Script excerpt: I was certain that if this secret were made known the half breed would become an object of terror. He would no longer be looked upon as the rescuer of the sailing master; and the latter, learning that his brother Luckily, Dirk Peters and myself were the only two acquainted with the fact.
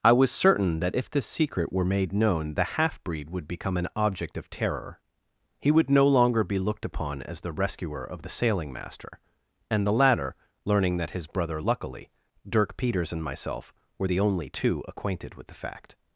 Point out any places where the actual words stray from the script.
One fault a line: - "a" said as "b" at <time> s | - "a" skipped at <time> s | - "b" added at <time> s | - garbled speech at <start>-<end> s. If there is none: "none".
none